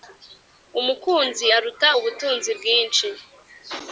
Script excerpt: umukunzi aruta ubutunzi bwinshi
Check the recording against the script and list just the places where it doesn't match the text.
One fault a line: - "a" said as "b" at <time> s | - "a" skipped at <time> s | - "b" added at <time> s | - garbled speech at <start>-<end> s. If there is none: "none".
none